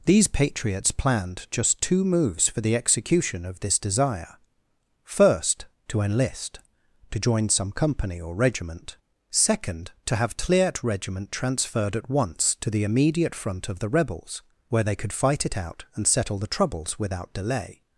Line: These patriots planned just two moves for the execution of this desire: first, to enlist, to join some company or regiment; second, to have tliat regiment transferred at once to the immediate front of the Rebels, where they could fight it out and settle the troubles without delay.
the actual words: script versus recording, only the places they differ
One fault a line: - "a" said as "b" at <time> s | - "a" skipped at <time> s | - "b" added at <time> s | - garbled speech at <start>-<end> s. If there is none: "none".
none